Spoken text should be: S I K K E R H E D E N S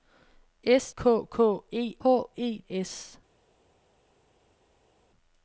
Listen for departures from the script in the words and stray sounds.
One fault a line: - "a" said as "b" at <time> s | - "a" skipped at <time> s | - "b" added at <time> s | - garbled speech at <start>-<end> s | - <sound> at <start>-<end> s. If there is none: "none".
- "I" skipped at 0.9 s
- "R" skipped at 2.0 s
- "D E N" skipped at 2.6 s